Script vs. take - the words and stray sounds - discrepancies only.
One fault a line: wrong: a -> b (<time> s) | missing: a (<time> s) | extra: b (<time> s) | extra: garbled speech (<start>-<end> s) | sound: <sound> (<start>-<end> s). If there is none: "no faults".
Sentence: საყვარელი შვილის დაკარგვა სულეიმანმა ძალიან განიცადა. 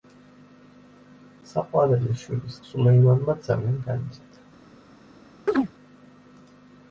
missing: დაკარგვა (2.6 s)
sound: chirp (5.5-5.7 s)